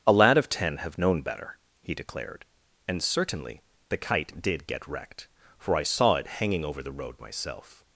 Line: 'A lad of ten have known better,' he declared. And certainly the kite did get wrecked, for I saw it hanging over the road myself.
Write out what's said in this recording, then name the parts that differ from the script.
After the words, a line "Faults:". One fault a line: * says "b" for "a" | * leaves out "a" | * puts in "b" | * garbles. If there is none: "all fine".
'A lad of ten have known better,' he declared. And certainly the kite did get wrecked, for I saw it hanging over the road myself.
Faults:
all fine